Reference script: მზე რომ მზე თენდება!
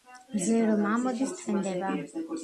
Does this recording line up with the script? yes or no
no